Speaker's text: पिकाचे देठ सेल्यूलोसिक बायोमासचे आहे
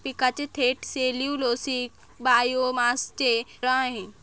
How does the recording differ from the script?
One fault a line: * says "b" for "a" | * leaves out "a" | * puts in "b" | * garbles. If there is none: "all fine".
all fine